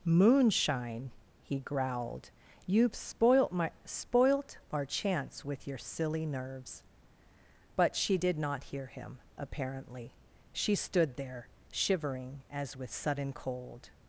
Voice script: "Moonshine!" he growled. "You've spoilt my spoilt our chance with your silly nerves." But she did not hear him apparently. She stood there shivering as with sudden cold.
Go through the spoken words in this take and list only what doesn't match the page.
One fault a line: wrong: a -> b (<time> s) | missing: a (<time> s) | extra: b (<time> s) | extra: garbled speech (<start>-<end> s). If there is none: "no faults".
no faults